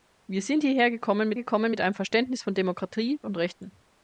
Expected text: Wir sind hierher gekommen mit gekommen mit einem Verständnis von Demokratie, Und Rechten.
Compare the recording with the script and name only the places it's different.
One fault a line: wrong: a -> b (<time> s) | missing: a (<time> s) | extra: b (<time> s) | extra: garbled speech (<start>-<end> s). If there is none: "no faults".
no faults